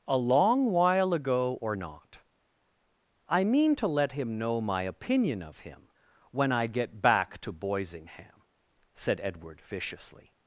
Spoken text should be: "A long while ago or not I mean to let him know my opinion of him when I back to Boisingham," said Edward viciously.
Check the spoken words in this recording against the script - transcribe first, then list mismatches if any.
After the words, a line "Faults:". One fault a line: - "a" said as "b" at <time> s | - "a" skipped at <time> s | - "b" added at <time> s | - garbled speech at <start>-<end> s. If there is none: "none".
"A long while ago or not I mean to let him know my opinion of him when I get back to Boisingham," said Edward viciously.
Faults:
- "get" added at 6.7 s